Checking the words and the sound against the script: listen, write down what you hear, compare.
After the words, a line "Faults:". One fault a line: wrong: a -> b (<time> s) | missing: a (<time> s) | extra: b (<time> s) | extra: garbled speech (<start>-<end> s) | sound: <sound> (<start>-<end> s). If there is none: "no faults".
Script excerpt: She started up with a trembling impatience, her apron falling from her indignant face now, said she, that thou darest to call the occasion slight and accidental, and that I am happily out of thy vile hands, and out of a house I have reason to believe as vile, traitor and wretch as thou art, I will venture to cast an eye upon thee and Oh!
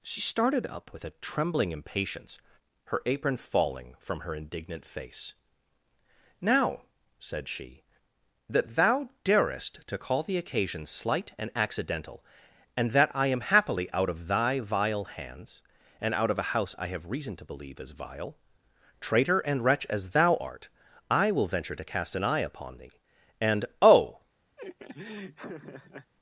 She started up with a trembling impatience, her apron falling from her indignant face now, said she, that thou darest to call the occasion slight and accidental, and that I am happily out of thy vile hands, and out of a house I have reason to believe as vile, traitor and wretch as thou art, I will venture to cast an eye upon thee and Oh!
Faults:
sound: laugh (24.6-26.1 s)